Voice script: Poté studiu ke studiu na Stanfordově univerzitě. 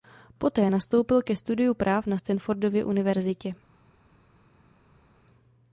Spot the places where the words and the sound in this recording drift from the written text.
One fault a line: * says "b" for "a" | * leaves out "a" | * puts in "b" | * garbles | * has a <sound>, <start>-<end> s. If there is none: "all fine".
* says "nastoupil" for "studiu"
* puts in "práv"